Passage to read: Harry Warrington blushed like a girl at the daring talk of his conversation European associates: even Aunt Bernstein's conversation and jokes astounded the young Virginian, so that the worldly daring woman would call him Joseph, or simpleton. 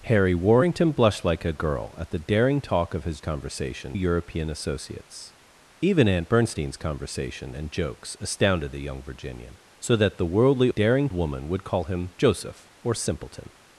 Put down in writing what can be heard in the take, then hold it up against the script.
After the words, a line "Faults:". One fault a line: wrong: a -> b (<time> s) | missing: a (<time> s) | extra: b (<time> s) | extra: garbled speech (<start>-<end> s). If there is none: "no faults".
Harry Warrington blushed like a girl at the daring talk of his conversation European associates: even Aunt Bernstein's conversation and jokes astounded the young Virginian, so that the worldly daring woman would call him Joseph, or simpleton.
Faults:
no faults